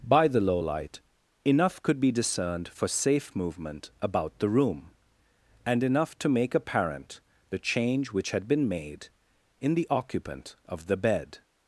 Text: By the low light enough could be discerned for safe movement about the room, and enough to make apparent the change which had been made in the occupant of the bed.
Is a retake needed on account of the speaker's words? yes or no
no